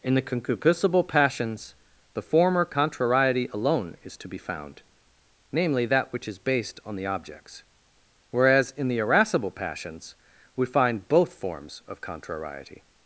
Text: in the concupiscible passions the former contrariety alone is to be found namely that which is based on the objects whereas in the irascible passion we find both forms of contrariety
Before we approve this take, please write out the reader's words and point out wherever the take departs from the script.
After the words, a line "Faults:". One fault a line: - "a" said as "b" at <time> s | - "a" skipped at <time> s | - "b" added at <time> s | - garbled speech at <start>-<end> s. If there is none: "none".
in the concupiscible passions the former contrariety alone is to be found namely that which is based on the objects whereas in the irascible passions we find both forms of contrariety
Faults:
- "passion" said as "passions" at 9.5 s